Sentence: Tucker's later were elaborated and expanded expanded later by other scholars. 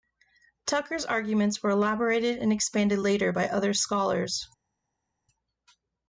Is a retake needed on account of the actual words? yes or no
yes